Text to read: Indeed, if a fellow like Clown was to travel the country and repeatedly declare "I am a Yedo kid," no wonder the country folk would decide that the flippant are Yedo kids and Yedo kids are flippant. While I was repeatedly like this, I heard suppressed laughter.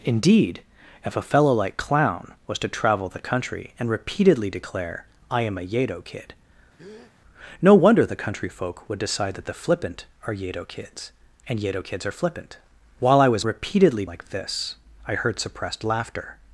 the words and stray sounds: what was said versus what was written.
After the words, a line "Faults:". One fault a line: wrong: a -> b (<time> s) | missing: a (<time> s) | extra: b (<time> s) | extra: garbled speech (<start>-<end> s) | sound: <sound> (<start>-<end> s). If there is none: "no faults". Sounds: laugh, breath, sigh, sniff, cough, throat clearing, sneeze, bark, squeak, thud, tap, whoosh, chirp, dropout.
Indeed, if a fellow like Clown was to travel the country and repeatedly declare "I am a Yedo kid," no wonder the country folk would decide that the flippant are Yedo kids and Yedo kids are flippant. While I was repeatedly like this, I heard suppressed laughter.
Faults:
sound: breath (6.8-7.1 s)